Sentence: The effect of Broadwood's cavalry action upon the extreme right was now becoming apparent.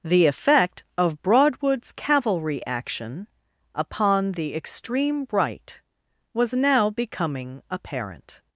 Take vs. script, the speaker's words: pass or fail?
pass